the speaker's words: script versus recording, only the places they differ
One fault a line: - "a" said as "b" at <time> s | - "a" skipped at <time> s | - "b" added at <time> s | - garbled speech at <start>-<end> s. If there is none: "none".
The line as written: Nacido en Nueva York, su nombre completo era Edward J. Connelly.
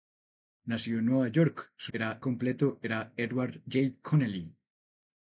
- "nombre" said as "era" at 1.9 s